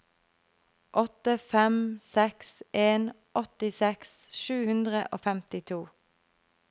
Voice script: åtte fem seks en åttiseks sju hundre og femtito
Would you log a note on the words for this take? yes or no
no